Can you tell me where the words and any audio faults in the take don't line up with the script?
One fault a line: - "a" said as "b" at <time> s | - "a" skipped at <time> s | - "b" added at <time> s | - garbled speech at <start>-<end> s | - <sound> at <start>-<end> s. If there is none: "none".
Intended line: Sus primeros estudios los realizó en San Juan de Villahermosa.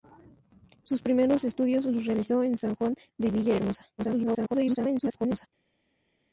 - garbled speech at 4.0-5.5 s